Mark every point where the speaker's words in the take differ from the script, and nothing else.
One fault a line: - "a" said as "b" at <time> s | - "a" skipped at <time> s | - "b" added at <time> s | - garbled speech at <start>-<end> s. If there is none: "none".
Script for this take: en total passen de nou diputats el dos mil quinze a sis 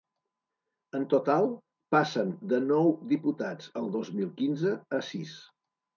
none